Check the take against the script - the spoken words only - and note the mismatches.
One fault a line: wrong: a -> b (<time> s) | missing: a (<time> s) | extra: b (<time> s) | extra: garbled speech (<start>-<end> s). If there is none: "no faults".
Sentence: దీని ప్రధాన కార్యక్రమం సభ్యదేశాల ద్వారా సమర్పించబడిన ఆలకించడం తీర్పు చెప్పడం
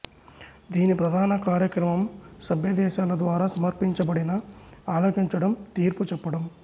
no faults